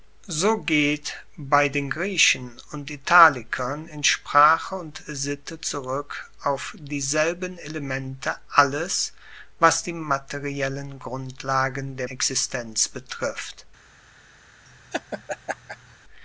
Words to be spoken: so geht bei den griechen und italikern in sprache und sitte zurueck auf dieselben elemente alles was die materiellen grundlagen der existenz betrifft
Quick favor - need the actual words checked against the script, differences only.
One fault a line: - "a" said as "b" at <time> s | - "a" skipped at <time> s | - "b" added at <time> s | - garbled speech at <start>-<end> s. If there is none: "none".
none